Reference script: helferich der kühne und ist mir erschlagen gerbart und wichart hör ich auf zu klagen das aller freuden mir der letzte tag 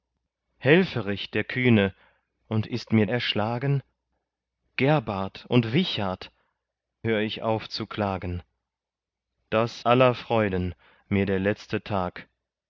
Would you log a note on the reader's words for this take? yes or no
no